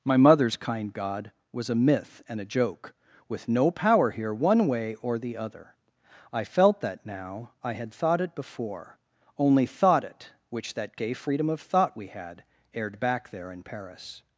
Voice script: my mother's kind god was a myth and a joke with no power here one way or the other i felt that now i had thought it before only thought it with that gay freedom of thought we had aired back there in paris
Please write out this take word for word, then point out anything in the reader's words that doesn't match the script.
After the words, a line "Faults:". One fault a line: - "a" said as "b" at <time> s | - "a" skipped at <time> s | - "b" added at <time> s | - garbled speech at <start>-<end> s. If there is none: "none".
my mother's kind god was a myth and a joke with no power here one way or the other i felt that now i had thought it before only thought it which that gay freedom of thought we had aired back there in paris
Faults:
- "with" said as "which" at 10.5 s